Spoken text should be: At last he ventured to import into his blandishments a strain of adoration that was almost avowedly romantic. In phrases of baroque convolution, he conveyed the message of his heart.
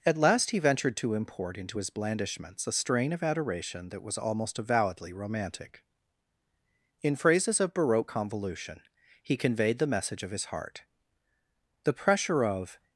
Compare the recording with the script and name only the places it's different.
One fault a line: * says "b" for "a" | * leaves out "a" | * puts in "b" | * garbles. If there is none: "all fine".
* puts in "The pressure of"